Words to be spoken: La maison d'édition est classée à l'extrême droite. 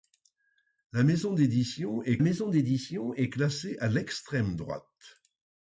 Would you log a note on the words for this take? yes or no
yes